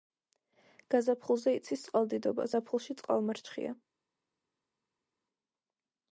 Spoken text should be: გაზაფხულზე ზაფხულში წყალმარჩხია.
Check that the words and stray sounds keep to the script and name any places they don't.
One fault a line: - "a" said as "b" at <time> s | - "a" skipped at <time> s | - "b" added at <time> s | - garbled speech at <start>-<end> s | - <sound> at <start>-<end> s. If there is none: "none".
- "იცის წყალდიდობა" added at 1.6 s